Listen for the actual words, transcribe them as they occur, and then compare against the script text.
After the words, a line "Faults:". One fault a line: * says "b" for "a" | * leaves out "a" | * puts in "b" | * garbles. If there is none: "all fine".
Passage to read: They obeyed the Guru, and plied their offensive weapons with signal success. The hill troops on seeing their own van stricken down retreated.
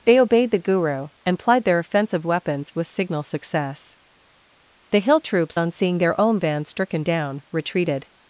They obeyed the Guru, and plied their offensive weapons with signal success. The hill troops on seeing their own van stricken down retreated.
Faults:
all fine